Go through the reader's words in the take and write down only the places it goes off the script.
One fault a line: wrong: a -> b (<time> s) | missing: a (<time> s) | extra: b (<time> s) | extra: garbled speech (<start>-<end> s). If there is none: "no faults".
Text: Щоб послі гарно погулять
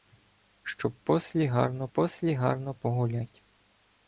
extra: послі гарно (1.9 s)